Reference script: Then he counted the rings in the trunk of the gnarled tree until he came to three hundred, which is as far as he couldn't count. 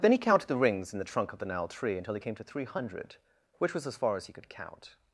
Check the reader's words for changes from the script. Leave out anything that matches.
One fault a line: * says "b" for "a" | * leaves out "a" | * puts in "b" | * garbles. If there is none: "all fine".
* says "was" for "is"
* says "could" for "couldn't"